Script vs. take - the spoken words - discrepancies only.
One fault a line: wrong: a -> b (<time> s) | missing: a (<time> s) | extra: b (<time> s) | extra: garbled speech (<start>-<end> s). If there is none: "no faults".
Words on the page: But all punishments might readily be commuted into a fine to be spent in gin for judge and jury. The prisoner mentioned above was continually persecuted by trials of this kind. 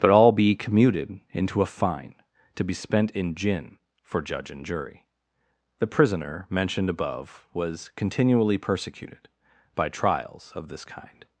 missing: punishments might readily (0.3 s)